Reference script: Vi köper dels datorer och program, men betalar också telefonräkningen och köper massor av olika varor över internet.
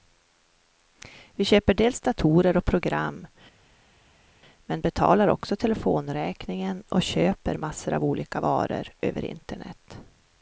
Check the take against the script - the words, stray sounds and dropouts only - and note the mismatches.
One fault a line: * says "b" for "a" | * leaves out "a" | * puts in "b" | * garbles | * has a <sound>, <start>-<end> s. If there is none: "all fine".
all fine